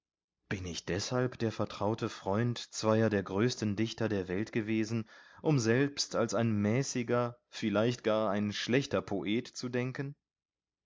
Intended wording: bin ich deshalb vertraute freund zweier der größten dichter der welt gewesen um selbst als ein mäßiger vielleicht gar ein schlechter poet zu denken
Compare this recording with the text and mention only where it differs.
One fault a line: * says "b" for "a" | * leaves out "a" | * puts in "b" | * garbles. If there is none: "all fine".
* puts in "der"